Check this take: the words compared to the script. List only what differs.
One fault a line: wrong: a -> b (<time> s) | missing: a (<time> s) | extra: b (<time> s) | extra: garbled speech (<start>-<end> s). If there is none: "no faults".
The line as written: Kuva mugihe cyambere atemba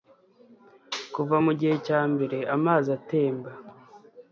extra: amazi (2.6 s)